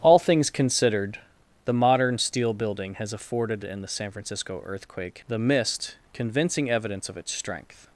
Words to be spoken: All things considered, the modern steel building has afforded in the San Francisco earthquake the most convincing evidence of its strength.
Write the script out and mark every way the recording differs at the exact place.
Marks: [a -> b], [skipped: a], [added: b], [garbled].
All things considered, the modern steel building has afforded in the San Francisco earthquake the [most -> mist] convincing evidence of its strength.